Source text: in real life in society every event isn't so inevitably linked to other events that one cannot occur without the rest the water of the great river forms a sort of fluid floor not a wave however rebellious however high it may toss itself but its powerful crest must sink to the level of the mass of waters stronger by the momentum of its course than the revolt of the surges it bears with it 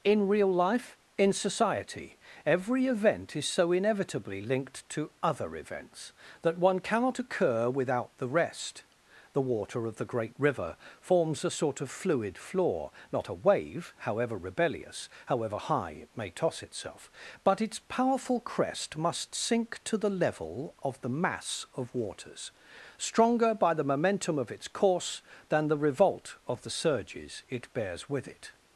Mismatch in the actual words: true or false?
true